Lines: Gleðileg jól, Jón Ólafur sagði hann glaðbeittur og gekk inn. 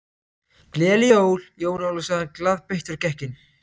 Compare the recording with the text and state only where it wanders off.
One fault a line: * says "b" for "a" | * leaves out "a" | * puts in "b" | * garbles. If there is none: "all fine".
all fine